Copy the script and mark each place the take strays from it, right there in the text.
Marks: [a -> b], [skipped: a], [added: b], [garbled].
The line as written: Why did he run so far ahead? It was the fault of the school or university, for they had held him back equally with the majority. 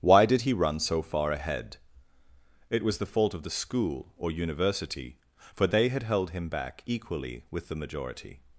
Why did he run so far ahead? It was the fault of the school or university, for they had held him back equally with the majority.